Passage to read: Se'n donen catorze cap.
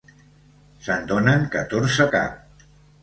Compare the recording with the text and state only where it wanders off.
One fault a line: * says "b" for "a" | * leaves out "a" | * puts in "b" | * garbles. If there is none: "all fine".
all fine